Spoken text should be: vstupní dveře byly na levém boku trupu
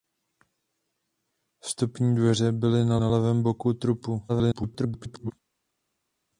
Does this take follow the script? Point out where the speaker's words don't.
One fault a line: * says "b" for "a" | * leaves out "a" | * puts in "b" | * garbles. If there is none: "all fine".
* puts in "na"
* garbles